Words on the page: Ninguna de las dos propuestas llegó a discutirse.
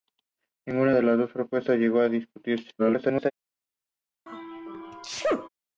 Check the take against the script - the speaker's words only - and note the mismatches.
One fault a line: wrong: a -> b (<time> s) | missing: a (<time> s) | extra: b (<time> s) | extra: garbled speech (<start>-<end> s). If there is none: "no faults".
extra: garbled speech (2.8-3.3 s)